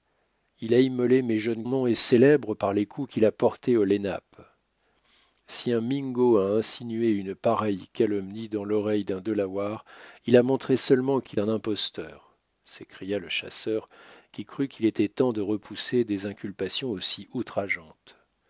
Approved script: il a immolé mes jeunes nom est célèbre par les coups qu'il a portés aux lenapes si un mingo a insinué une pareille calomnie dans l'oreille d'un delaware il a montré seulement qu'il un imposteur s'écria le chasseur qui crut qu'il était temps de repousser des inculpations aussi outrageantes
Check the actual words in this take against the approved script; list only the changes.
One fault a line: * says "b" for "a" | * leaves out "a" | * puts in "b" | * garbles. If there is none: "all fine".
all fine